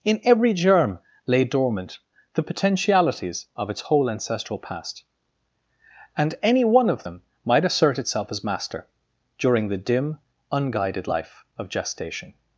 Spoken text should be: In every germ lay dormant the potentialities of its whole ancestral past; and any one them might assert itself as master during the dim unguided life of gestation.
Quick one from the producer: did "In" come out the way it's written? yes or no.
yes